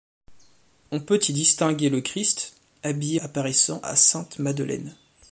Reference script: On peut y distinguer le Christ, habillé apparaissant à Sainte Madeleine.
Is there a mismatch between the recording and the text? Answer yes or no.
no